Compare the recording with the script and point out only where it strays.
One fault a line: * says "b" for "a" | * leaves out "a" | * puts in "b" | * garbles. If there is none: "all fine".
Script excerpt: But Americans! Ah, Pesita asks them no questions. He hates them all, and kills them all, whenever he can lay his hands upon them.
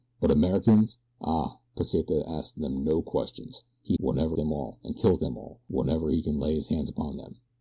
* says "whenever" for "hates"